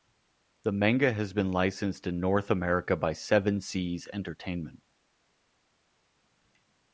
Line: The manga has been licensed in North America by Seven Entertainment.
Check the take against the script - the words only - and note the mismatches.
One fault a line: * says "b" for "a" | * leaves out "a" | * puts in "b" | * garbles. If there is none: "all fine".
* puts in "Seas"